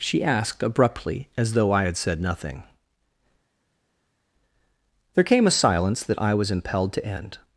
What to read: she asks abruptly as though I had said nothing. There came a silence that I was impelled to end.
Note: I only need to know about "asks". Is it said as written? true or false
false